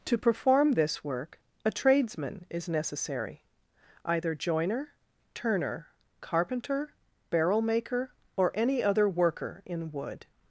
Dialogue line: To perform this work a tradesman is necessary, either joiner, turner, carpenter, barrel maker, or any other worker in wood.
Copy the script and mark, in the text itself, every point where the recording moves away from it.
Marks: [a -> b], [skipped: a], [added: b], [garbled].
To perform this work a tradesman is necessary, either joiner, turner, carpenter, barrel maker, or any other worker in wood.